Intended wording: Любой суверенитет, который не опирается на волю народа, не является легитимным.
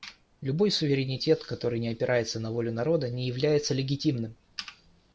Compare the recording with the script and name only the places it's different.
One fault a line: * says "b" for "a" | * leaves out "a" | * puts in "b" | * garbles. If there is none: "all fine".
all fine